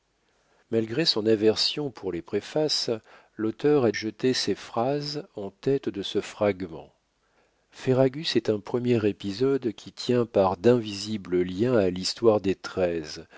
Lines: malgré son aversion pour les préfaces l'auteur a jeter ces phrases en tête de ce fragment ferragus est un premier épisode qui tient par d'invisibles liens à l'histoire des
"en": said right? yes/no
yes